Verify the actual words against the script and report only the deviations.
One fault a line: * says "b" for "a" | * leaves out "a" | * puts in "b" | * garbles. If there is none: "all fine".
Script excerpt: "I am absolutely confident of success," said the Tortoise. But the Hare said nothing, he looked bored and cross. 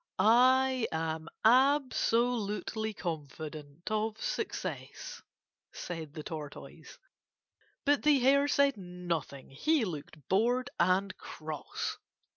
all fine